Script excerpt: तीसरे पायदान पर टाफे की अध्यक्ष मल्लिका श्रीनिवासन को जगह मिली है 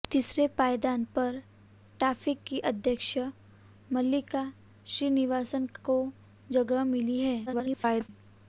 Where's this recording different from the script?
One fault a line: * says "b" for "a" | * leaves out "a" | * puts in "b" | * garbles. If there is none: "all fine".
* garbles